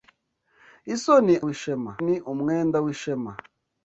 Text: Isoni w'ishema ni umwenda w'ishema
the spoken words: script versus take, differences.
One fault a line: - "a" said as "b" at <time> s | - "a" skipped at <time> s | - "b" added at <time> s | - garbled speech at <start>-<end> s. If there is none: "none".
none